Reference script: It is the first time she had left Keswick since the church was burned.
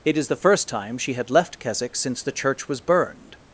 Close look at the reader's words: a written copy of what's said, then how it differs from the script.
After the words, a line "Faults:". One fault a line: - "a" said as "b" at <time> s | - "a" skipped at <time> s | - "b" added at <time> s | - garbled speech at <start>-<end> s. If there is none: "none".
It is the first time she had left Keswick since the church was burned.
Faults:
none